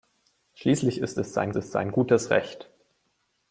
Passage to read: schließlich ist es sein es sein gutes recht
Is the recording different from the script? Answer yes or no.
no